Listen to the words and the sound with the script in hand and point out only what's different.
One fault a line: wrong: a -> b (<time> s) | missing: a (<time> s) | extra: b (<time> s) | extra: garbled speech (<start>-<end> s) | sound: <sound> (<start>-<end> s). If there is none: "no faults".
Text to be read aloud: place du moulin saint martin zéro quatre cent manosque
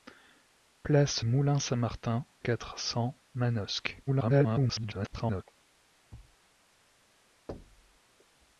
missing: du (1.2 s)
missing: zéro (2.2 s)
extra: garbled speech (4.1-5.4 s)
sound: thud (6.1-6.4 s)
sound: thud (7.5-8.0 s)